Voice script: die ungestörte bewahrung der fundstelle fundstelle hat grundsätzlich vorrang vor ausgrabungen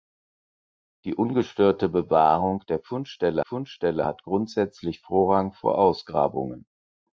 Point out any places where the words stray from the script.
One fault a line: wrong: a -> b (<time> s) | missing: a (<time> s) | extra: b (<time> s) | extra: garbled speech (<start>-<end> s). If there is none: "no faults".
no faults